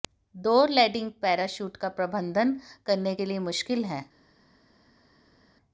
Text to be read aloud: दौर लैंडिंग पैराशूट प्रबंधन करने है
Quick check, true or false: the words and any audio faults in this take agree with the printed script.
false